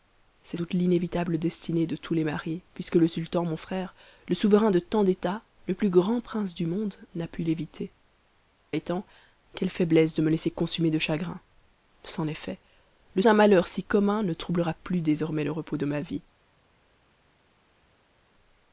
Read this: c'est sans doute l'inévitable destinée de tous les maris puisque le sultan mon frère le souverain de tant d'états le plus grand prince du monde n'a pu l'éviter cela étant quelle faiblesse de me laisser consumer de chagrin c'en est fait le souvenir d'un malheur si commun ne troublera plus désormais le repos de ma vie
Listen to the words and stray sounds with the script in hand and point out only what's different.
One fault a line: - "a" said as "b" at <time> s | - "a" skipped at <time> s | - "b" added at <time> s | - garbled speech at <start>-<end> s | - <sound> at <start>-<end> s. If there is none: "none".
- "sans" skipped at 0.6 s
- "cela" skipped at 7.9 s
- "souvenir" skipped at 13.2 s